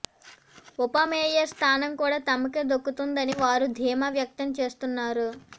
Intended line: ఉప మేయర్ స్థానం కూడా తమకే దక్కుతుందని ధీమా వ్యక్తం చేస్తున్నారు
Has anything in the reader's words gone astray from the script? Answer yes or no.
yes